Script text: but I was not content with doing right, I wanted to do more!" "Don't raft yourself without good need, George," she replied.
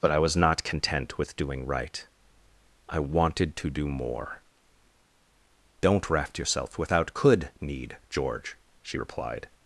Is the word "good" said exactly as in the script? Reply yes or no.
no